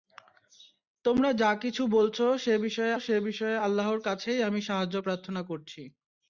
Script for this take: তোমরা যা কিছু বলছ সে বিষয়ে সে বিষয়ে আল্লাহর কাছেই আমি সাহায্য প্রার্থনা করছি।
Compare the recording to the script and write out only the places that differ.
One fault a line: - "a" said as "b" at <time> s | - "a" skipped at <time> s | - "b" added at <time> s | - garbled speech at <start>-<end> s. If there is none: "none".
none